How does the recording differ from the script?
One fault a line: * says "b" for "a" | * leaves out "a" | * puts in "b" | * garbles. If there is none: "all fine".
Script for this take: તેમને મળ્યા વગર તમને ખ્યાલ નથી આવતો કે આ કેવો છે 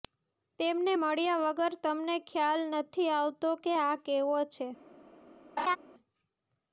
all fine